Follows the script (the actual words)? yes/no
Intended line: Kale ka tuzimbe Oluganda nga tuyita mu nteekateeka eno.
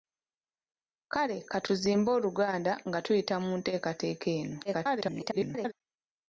no